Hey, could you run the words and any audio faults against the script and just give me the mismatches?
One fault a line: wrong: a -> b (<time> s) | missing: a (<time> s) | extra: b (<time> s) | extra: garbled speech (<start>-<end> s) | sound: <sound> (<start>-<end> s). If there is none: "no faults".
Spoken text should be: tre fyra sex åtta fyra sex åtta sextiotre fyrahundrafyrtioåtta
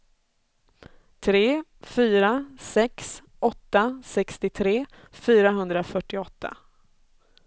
missing: fyra sex åtta (4.0 s)